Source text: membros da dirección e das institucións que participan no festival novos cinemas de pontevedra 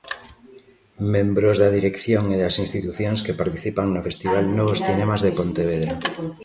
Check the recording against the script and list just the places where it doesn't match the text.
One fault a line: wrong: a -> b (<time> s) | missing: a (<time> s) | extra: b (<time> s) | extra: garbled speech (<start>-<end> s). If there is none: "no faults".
no faults